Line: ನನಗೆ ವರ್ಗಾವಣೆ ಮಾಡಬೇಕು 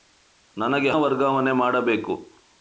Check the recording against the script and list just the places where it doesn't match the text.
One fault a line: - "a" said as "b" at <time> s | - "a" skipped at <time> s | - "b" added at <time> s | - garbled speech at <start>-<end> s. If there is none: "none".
none